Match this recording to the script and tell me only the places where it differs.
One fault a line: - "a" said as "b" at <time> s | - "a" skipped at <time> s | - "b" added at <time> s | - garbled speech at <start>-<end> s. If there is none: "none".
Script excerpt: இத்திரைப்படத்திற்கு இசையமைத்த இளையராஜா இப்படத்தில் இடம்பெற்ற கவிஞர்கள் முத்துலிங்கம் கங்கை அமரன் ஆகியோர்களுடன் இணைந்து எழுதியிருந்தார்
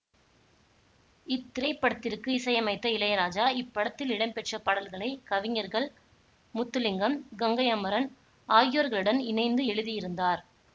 - "பாடல்களை" added at 4.6 s